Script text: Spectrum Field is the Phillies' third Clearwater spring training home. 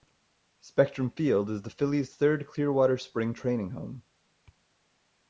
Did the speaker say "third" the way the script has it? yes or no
yes